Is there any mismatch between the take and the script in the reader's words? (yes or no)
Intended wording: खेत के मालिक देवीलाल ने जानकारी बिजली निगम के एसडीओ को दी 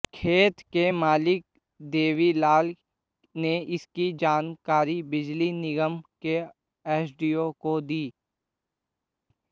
yes